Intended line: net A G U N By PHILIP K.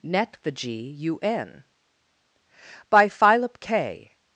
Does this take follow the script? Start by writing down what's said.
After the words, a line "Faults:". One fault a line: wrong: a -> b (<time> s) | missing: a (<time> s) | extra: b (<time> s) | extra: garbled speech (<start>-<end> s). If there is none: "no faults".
net THE G U N By PHILIP K.
Faults:
wrong: A -> THE (0.4 s)